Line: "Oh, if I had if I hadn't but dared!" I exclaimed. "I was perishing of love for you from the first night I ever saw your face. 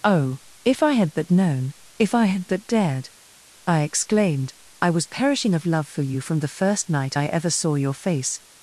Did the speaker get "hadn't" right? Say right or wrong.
wrong